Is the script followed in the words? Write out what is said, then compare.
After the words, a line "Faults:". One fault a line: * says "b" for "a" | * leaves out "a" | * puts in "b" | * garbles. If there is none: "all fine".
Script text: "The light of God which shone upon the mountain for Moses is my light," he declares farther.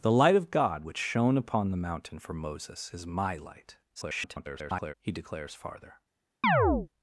"The light of God which shone upon the mountain for Moses is my light," [garbled] he declares farther.
Faults:
* garbles